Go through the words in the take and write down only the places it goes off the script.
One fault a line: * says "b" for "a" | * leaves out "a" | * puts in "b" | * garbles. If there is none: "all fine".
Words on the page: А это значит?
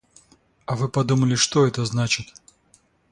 * puts in "вы подумали что"